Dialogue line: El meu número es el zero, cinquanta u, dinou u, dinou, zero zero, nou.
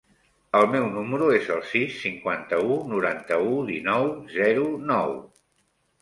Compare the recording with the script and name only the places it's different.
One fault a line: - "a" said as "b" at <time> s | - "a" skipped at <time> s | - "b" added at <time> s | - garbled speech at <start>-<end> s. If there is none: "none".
- "zero" said as "sis" at 1.7 s
- "dinou" said as "noranta" at 2.9 s
- "zero" skipped at 4.6 s